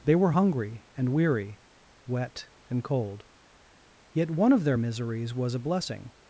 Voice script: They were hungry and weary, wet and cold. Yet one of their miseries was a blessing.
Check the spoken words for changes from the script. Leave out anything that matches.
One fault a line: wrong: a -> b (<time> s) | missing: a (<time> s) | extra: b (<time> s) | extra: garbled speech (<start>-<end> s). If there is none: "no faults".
no faults